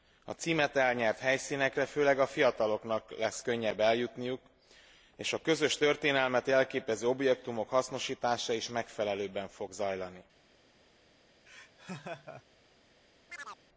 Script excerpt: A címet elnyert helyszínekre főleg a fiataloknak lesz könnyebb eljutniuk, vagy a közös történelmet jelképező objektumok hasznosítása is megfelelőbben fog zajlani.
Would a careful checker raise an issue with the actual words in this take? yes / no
yes